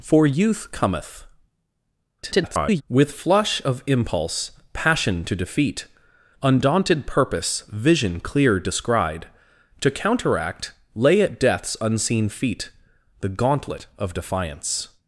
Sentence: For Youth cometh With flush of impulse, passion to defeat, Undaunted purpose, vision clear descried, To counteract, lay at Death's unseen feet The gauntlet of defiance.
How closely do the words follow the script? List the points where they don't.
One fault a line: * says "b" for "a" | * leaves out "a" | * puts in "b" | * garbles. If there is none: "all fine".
* garbles